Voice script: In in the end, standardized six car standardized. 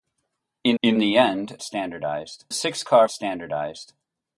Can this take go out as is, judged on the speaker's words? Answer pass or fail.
pass